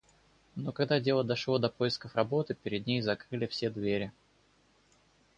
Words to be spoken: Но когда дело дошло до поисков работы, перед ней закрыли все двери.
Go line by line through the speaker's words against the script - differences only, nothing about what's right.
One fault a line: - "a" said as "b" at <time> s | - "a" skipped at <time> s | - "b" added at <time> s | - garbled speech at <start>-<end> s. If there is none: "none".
none